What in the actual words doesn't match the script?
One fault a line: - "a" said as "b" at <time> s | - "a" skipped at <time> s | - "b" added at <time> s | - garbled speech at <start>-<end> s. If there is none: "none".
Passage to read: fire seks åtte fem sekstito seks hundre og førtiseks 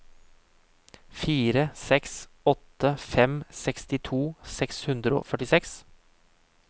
none